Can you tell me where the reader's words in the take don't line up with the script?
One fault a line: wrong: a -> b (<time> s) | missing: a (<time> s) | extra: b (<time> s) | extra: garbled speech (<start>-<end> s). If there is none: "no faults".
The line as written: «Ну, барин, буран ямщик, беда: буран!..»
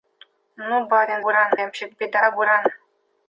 no faults